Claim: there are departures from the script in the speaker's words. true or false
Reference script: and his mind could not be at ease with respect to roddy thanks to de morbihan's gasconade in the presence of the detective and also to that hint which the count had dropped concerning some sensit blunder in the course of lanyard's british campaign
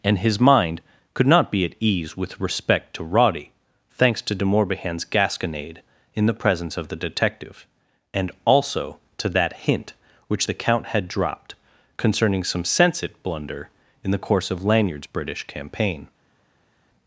false